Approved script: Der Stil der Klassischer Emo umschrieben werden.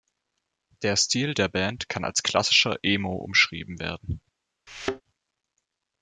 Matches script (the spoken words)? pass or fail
fail